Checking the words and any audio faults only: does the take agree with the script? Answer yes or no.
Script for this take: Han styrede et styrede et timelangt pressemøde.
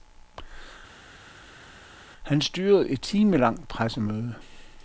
no